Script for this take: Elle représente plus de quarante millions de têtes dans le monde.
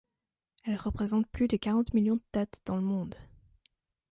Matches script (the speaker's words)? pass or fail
pass